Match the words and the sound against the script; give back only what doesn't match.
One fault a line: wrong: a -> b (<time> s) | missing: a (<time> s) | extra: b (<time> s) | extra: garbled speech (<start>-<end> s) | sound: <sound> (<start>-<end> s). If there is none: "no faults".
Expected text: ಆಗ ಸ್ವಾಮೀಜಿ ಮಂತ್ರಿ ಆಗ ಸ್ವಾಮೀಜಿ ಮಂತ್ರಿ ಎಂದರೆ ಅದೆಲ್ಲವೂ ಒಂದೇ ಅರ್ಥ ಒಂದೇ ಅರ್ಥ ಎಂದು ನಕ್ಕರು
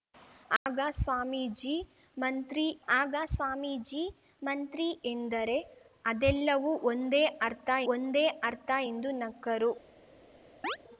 sound: dropout (0.6-0.7 s)
sound: chirp (10.6-10.8 s)